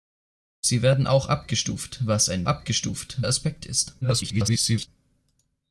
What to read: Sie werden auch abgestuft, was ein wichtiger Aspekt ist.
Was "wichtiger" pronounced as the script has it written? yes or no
no